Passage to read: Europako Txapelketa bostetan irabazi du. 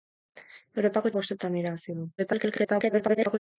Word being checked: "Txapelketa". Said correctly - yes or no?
no